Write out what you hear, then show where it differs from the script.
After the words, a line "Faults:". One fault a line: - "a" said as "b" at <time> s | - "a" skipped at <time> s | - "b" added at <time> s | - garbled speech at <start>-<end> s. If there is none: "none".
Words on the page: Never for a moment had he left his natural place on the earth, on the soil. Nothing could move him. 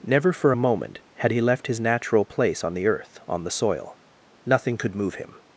Never for a moment had he left his natural place on the earth, on the soil. Nothing could move him.
Faults:
none